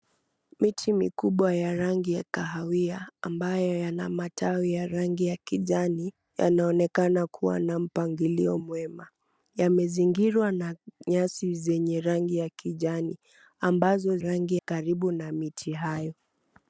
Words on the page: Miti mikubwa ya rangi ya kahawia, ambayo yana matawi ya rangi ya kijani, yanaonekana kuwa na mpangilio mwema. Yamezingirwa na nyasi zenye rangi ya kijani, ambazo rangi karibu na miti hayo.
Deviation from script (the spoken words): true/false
false